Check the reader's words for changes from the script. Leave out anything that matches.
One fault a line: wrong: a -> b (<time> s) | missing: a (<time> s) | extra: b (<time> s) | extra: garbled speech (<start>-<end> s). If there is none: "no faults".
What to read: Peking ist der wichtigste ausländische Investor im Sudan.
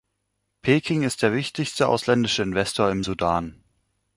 no faults